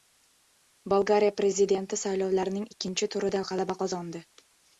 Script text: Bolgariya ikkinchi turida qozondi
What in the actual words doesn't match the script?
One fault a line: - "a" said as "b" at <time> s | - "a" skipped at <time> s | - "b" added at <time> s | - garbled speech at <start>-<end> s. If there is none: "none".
- "prezidenti saylovlarning" added at 1.4 s
- "g‘alaba" added at 3.5 s